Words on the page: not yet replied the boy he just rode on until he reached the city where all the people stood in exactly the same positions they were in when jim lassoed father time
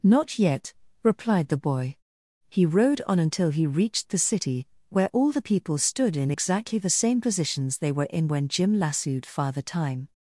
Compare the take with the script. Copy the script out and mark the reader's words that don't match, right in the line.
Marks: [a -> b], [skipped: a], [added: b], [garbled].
not yet replied the boy he [skipped: just] rode on until he reached the city where all the people stood in exactly the same positions they were in when jim lassoed father time